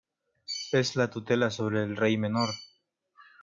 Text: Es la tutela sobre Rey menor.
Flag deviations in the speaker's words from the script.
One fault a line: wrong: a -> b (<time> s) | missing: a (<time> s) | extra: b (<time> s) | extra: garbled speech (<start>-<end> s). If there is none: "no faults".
extra: el (1.8 s)